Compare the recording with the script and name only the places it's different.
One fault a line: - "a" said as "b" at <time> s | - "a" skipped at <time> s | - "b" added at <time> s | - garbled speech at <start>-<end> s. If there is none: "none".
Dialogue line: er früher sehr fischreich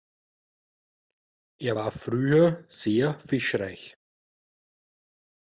- "war" added at 1.7 s